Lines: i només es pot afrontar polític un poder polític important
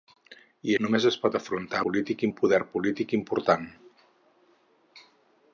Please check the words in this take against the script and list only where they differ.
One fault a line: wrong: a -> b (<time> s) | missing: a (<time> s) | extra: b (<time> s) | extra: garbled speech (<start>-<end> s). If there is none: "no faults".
no faults